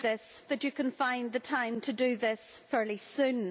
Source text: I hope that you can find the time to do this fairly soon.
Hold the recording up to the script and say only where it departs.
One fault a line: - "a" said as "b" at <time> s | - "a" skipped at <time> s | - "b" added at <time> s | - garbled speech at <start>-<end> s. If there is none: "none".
- "hope" said as "this" at -0.0 s